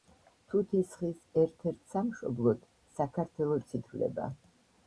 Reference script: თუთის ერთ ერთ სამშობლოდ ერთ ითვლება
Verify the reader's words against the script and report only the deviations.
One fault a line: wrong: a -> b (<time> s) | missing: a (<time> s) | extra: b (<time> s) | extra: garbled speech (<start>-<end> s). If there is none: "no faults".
extra: ხის (1.0 s)
wrong: ერთ -> საქართველოც (3.0 s)